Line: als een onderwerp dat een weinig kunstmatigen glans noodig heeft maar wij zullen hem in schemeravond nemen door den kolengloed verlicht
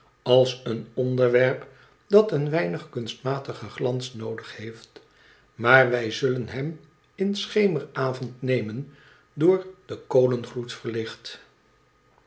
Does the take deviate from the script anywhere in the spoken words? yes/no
no